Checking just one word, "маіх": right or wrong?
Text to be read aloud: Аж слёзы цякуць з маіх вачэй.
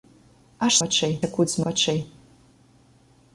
wrong